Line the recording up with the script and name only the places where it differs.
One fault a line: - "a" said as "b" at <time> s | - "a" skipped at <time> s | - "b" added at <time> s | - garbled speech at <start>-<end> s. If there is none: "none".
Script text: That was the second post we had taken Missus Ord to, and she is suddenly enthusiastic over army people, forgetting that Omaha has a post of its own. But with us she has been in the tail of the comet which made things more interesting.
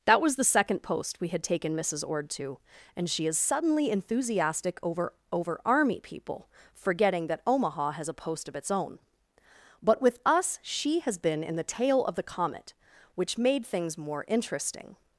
- "over" added at 5.3 s